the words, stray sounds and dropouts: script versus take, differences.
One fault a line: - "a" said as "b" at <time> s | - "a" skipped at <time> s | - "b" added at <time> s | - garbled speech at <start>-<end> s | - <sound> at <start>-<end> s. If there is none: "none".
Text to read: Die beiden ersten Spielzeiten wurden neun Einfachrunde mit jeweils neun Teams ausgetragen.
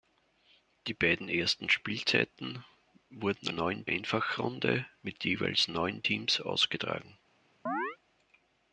- chirp at 7.7-8.0 s